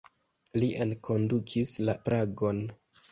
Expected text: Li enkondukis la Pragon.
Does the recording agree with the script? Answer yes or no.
yes